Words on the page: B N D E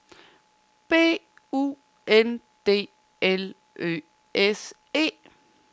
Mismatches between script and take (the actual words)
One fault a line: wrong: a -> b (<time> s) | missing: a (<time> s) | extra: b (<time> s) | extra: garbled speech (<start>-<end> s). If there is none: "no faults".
extra: U (1.5 s)
extra: L Ø S (3.2 s)